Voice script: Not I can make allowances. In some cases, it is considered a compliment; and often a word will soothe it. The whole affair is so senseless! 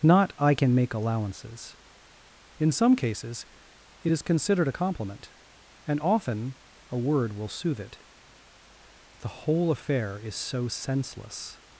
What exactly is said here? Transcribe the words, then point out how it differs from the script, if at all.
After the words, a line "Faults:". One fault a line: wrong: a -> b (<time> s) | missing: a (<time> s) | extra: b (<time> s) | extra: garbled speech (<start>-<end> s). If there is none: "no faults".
Not I can make allowances. In some cases, it is considered a compliment; and often a word will soothe it. The whole affair is so senseless!
Faults:
no faults